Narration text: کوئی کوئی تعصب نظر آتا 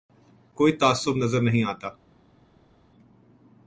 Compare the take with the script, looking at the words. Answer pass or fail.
fail